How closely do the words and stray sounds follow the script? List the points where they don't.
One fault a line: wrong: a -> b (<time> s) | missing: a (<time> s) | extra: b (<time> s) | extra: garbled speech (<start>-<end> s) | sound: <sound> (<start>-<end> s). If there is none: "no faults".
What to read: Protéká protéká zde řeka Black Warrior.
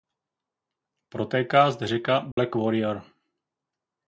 missing: protéká (1.7 s)
sound: dropout (2.3-2.4 s)